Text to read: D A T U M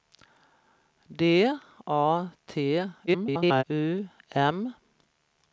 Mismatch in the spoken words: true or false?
true